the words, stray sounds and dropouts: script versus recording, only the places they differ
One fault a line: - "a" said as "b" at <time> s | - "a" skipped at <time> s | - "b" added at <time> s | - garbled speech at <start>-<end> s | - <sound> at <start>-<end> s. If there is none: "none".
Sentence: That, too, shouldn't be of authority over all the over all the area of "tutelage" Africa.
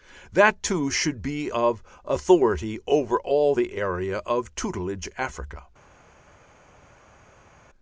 - "shouldn't" said as "should" at 0.9 s
- "over all the" skipped at 3.7 s